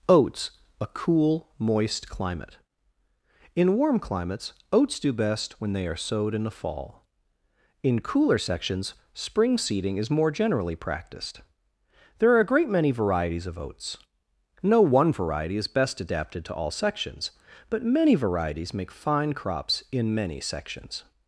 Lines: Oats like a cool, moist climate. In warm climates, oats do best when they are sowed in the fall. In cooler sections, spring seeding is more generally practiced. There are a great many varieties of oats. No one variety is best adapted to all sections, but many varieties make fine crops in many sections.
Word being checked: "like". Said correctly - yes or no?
no